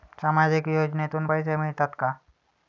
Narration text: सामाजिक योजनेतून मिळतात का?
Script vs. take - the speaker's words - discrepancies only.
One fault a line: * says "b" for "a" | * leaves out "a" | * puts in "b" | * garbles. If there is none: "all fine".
* puts in "पैसे"